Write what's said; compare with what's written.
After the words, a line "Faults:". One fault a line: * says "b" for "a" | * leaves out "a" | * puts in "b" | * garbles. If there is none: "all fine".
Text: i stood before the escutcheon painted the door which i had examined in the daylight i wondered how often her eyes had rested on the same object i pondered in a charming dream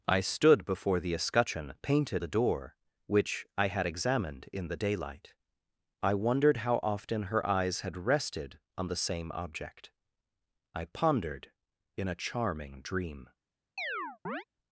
i stood before the escutcheon painted the door which i had examined in the daylight i wondered how often her eyes had rested on the same object i pondered in a charming dream
Faults:
all fine